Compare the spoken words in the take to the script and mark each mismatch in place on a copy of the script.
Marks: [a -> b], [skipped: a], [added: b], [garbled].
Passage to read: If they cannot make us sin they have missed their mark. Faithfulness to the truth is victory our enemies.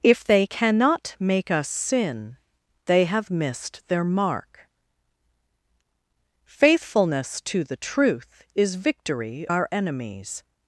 If they cannot make us sin they have missed their mark. Faithfulness to the truth is victory our enemies.